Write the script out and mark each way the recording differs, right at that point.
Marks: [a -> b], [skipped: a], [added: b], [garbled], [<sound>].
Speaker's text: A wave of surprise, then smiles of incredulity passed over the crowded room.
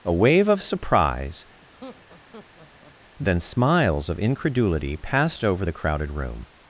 A wave of surprise, [laugh] then smiles of incredulity passed over the crowded room.